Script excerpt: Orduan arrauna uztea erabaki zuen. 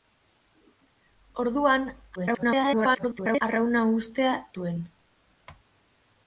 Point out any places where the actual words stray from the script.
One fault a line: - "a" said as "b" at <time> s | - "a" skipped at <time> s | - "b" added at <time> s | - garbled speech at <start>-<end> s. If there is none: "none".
- garbled speech at 2.2-3.4 s
- "erabaki" skipped at 4.4 s